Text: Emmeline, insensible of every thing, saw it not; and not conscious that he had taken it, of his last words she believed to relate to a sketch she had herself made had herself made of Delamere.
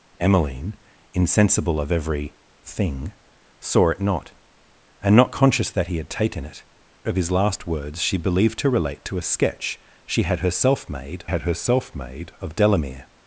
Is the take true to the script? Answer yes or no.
yes